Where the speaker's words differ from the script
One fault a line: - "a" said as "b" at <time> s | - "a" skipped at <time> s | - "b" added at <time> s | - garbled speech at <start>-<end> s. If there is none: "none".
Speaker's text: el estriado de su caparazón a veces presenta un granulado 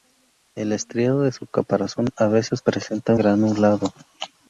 - "un" skipped at 3.1 s